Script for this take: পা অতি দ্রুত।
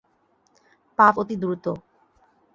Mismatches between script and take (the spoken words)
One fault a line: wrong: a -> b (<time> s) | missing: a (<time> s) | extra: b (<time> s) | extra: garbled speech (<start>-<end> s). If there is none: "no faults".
no faults